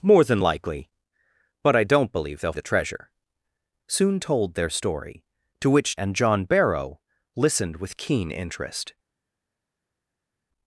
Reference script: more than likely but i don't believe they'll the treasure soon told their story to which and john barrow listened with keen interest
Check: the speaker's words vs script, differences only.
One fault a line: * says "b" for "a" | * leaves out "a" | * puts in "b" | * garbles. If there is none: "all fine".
all fine